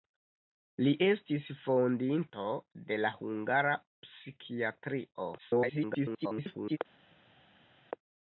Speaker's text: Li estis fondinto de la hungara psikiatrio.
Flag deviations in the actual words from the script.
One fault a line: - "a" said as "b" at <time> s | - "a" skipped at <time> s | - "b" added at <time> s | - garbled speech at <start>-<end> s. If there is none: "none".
- garbled speech at 5.4-6.8 s